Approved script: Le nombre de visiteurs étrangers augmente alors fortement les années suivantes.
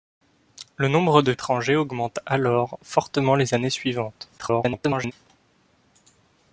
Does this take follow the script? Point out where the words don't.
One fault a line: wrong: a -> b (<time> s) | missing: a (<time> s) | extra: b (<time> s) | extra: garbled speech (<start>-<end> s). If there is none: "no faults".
missing: visiteurs (1.3 s)
extra: garbled speech (4.4-5.1 s)